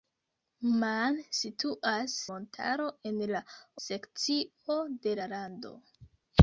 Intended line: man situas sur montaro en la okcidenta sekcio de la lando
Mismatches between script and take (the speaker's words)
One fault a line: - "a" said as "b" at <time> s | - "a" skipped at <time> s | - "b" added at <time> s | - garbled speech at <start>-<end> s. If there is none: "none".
- "sur" skipped at 2.1 s
- "okcidenta" skipped at 3.4 s